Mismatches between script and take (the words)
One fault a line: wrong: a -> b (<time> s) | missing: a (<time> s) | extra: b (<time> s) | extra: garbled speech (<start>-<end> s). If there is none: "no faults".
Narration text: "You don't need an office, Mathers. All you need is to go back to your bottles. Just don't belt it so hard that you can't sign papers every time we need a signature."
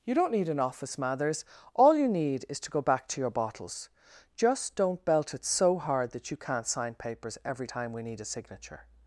no faults